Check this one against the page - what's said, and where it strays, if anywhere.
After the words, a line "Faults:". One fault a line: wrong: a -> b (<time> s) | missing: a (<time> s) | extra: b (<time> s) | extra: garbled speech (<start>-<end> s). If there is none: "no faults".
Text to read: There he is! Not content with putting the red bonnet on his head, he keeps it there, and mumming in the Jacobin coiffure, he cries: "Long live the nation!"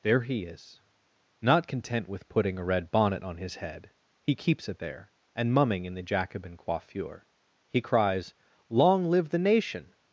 There he is! Not content with putting a red bonnet on his head, he keeps it there, and mumming in the Jacobin coiffure, he cries: "Long live the nation!"
Faults:
wrong: the -> a (2.6 s)